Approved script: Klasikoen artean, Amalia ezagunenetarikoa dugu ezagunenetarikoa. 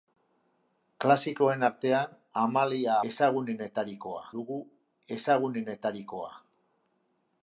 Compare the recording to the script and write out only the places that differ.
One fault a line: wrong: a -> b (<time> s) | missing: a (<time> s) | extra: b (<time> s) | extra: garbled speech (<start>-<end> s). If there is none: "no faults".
no faults